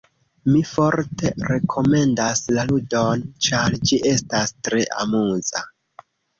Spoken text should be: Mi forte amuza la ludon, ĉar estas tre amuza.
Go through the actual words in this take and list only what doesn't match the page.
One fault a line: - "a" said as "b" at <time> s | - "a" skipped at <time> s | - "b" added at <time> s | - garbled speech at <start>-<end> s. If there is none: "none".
- "amuza" said as "rekomendas" at 1.5 s
- "ĝi" added at 3.9 s